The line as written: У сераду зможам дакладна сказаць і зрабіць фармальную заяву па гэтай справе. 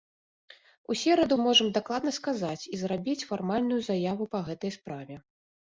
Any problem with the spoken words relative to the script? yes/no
no